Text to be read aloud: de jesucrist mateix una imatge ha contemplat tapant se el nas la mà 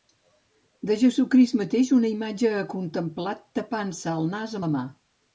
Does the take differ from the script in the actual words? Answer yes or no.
no